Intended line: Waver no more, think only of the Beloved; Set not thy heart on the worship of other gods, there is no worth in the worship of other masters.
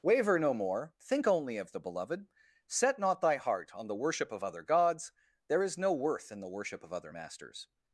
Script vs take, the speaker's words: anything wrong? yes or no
no